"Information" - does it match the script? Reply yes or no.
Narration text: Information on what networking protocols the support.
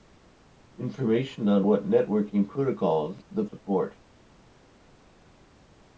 yes